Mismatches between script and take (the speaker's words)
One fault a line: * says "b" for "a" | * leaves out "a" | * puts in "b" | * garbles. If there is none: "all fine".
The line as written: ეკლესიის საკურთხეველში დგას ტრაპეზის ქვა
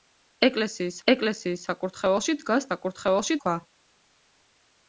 * puts in "ეკლესიის"
* says "საკურთხეველში" for "ტრაპეზის"